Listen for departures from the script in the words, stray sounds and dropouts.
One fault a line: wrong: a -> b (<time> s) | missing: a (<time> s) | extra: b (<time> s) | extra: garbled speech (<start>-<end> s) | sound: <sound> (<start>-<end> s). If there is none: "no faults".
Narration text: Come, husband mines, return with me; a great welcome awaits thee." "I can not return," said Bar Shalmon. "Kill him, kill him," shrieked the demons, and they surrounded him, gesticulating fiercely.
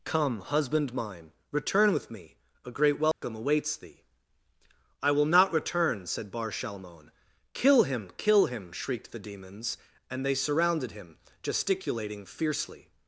wrong: mines -> mine (0.9 s)
sound: dropout (3.1-3.2 s)
wrong: can -> will (5.1 s)